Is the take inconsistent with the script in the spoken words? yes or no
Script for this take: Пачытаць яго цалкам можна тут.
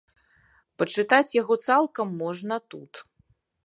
no